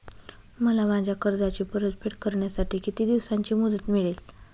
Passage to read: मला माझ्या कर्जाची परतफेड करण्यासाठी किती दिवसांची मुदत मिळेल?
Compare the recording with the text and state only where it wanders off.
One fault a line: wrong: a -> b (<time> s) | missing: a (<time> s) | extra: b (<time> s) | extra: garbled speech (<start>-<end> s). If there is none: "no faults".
no faults